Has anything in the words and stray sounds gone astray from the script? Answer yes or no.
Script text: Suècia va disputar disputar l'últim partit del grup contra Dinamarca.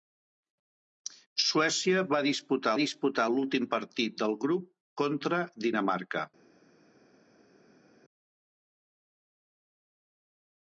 no